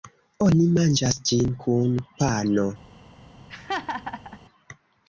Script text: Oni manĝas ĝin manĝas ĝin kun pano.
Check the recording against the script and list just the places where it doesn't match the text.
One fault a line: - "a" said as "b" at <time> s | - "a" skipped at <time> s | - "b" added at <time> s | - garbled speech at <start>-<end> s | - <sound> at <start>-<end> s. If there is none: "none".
- "manĝas ĝin" skipped at 1.5 s
- laugh at 3.5-4.4 s